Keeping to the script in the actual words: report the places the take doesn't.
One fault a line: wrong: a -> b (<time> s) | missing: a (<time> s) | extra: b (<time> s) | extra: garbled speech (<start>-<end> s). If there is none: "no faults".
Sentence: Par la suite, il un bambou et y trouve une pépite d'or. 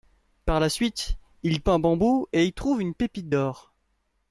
no faults